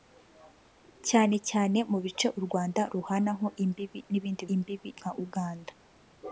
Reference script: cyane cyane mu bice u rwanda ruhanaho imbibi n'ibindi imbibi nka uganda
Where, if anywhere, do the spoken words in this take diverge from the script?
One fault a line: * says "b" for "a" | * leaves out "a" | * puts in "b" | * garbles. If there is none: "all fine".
all fine